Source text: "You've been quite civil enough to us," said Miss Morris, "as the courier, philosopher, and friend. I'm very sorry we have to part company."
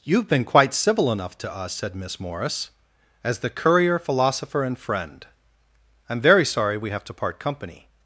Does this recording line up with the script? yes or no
yes